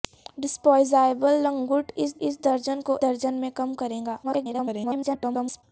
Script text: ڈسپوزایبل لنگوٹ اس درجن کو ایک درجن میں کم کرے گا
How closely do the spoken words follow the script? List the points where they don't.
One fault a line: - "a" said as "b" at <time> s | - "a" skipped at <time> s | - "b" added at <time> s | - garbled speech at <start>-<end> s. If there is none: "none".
- "اس" added at 2.2 s
- "ایک" skipped at 3.0 s
- garbled speech at 4.2-5.6 s